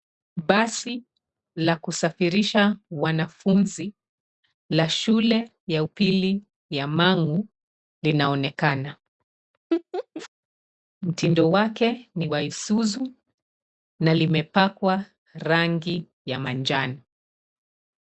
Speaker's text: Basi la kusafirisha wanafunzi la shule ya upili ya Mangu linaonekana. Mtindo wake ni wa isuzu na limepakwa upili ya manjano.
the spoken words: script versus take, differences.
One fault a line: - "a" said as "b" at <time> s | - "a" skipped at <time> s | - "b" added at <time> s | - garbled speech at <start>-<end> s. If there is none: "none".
- "upili" said as "rangi" at 15.3 s